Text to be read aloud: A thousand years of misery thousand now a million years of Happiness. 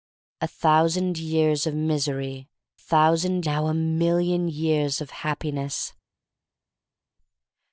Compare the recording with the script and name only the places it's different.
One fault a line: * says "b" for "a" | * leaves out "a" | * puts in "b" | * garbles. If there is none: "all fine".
all fine